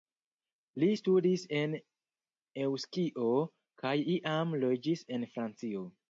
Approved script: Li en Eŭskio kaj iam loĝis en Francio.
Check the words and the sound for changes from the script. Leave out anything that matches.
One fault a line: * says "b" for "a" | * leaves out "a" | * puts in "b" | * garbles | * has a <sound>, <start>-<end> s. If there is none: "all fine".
* puts in "studis"